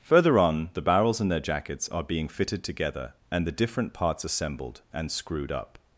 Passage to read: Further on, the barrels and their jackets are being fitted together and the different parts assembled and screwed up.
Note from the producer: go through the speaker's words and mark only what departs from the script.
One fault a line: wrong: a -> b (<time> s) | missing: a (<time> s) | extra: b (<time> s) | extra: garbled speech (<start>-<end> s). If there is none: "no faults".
no faults